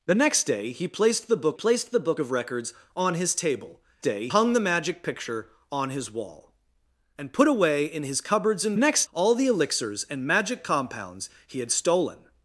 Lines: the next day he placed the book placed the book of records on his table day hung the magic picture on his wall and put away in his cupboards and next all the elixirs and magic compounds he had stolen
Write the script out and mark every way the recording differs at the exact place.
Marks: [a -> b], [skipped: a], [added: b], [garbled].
the next day he placed the book placed the book of records on his table day hung the magic picture on his wall and put away in his cupboards and next all the elixirs and magic compounds he had stolen